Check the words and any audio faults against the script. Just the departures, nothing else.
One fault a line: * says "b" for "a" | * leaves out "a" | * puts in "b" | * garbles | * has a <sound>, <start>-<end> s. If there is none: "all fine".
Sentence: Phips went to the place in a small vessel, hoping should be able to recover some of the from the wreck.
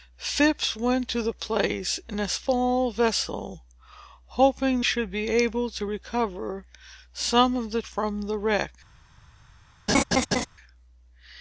* has a laugh, 9.9-10.5 s